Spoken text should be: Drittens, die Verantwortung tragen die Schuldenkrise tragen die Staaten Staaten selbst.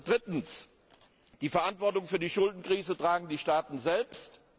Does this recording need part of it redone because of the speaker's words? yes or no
yes